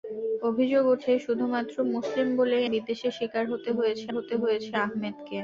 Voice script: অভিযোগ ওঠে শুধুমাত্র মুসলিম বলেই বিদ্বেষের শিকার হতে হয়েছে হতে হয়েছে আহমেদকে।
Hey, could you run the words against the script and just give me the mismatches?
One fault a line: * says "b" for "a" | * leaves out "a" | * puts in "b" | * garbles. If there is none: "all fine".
all fine